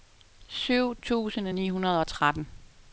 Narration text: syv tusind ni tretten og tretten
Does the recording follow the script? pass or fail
fail